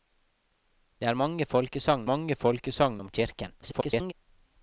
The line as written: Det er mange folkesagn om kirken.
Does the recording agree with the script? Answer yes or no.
no